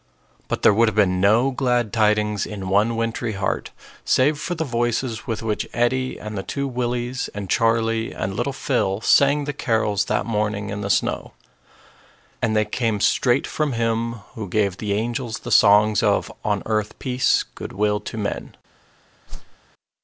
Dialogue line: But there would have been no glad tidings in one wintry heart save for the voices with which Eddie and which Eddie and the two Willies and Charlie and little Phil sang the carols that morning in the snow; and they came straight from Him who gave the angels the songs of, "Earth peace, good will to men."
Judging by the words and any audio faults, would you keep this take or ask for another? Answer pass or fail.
fail